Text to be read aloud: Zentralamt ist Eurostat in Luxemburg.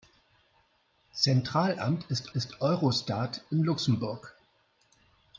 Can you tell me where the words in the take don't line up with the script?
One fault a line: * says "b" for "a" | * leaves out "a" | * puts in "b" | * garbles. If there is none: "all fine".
* puts in "ist"